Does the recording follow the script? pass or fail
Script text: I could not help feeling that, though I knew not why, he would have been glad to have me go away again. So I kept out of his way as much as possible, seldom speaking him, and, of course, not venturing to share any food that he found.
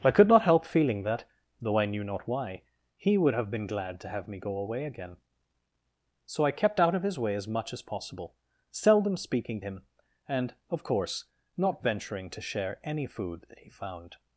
pass